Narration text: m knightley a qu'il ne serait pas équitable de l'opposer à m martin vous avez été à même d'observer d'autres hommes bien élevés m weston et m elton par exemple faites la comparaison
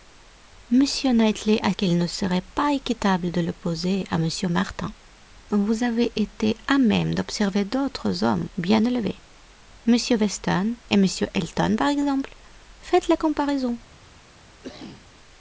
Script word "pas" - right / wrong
right